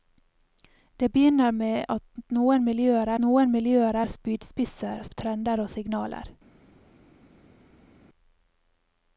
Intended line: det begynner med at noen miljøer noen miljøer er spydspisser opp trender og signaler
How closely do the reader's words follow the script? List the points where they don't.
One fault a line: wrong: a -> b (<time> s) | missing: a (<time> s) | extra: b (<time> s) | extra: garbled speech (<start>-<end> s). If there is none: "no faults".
no faults